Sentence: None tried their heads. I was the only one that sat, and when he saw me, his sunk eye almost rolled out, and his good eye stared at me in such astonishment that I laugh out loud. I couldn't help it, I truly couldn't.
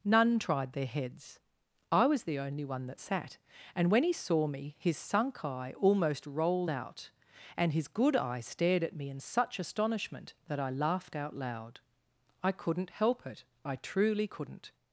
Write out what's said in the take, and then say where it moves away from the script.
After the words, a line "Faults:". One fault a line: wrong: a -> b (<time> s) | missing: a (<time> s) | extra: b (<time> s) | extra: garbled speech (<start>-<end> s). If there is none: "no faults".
None tried their heads. I was the only one that sat, and when he saw me, his sunk eye almost rolled out, and his good eye stared at me in such astonishment that I laughed out loud. I couldn't help it, I truly couldn't.
Faults:
wrong: laugh -> laughed (10.7 s)